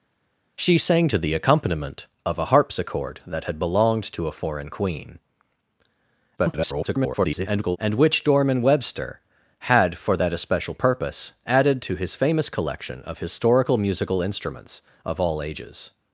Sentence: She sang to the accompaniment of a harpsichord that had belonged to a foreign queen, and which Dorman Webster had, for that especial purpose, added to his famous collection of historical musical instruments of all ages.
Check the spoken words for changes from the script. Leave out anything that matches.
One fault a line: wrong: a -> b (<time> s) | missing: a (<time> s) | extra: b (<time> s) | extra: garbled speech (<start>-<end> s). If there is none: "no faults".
extra: garbled speech (6.4-7.8 s)